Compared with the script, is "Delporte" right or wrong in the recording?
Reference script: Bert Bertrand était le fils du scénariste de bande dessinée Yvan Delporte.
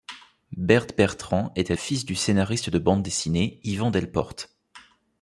right